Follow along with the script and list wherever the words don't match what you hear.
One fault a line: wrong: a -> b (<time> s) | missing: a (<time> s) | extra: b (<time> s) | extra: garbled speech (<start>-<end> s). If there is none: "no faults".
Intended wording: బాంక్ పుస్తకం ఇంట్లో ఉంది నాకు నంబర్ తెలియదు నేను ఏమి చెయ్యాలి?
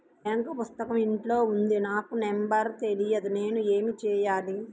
no faults